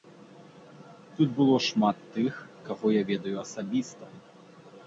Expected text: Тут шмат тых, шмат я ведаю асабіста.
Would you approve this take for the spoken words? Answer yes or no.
no